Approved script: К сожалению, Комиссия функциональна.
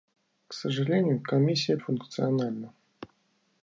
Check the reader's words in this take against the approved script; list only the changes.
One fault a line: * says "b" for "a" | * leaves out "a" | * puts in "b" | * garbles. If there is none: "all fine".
all fine